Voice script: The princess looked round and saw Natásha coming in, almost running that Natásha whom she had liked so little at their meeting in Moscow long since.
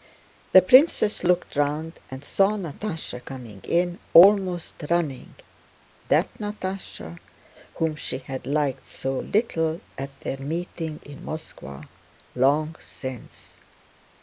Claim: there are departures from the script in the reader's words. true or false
false